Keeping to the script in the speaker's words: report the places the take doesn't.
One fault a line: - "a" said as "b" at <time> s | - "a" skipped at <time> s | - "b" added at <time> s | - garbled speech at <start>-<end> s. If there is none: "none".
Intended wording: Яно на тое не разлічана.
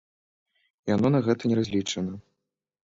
- "тое" said as "гэта" at 1.3 s